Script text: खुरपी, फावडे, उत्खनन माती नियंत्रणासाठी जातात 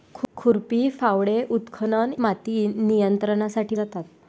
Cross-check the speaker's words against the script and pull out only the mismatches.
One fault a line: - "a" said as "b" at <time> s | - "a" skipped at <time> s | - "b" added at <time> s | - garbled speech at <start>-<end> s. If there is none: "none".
none